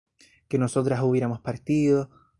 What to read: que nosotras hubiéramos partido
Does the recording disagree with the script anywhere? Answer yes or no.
no